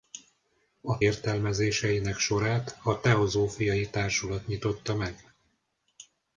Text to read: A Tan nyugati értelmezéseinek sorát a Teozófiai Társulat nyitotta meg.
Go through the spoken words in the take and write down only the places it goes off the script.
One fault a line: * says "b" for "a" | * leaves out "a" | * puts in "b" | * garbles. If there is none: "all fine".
* leaves out "Tan nyugati"